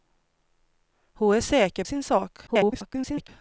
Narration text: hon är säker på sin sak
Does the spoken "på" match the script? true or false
false